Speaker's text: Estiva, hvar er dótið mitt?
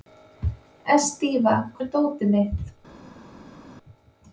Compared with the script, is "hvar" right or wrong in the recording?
wrong